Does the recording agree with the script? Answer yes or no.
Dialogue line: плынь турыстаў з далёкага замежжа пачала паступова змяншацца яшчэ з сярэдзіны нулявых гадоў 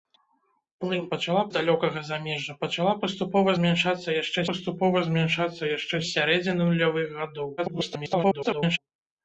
no